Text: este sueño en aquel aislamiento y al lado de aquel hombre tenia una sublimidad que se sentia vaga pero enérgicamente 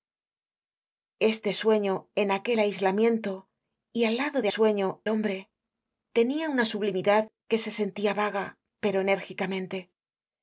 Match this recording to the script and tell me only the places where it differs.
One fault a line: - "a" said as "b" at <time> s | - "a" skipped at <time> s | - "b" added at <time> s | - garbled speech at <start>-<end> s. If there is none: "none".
- "aquel" said as "sueño" at 4.5 s